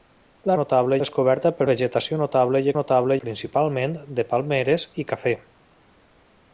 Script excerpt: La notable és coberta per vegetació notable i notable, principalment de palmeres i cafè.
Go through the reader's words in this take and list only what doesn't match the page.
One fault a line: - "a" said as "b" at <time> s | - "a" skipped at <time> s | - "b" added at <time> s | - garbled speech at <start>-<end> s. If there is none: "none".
none